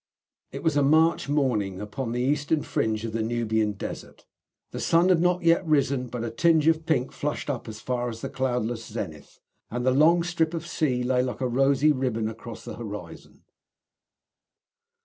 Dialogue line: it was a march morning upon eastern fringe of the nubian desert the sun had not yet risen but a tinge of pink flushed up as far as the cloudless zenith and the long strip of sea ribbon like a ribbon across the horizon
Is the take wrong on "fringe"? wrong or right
right